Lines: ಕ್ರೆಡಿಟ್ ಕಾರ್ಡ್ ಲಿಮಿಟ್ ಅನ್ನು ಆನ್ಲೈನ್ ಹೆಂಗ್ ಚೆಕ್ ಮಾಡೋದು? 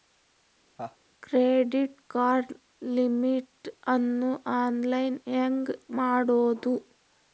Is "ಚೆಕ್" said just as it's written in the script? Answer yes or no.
no